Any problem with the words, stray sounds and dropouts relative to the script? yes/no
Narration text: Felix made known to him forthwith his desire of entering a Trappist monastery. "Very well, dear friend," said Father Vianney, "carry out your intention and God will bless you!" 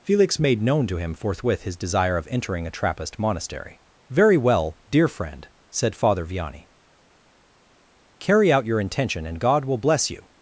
no